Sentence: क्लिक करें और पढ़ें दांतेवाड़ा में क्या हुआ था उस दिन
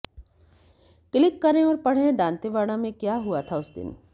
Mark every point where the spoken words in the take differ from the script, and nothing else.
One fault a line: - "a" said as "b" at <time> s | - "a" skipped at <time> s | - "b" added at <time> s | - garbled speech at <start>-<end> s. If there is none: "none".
none